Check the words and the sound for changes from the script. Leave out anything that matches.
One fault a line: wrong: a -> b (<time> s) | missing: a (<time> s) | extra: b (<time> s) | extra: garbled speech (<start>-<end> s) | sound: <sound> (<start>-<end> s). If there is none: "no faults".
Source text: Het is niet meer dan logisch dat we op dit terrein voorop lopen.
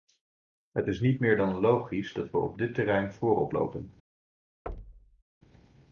sound: thud (4.7-5.2 s)